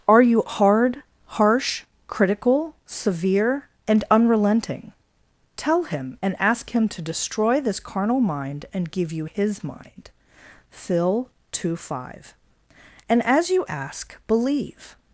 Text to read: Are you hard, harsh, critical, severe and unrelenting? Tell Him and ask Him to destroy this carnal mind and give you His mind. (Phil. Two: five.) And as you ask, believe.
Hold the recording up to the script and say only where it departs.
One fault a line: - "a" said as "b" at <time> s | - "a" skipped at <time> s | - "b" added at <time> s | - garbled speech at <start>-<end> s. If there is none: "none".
none